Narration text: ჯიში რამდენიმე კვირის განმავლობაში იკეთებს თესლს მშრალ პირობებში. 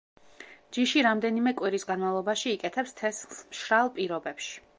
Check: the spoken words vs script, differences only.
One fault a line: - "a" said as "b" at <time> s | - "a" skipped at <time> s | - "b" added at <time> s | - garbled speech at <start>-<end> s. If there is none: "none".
none